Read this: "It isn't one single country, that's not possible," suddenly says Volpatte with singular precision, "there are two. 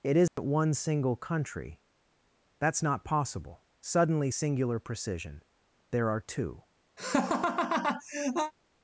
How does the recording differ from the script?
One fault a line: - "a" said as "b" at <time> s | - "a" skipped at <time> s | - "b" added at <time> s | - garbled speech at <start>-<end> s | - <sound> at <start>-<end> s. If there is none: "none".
- dropout at 0.3-0.4 s
- "says Volpatte with" skipped at 4.3 s
- laugh at 7.0-8.5 s